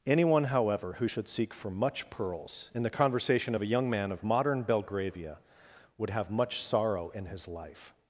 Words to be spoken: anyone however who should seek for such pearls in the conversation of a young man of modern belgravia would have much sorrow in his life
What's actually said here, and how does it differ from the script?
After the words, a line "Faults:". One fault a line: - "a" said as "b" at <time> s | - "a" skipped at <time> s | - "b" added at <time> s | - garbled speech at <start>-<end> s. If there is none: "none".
anyone however who should seek for much pearls in the conversation of a young man of modern belgravia would have much sorrow in his life
Faults:
- "such" said as "much" at 1.7 s